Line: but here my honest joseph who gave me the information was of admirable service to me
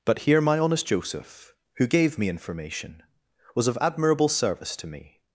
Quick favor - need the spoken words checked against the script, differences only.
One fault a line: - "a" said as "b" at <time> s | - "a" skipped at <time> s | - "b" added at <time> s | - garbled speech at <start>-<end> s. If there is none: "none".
- "the" skipped at 2.3 s